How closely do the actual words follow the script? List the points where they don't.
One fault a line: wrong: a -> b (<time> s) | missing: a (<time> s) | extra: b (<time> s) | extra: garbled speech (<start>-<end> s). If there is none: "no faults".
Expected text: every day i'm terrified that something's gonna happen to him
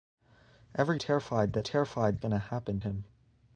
missing: day i'm (1.0 s)
wrong: something's -> terrified (1.6 s)
missing: to (2.8 s)